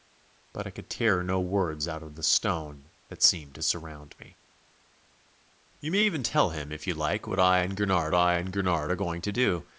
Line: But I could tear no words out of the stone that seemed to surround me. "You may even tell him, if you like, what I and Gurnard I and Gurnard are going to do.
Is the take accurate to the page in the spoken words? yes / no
yes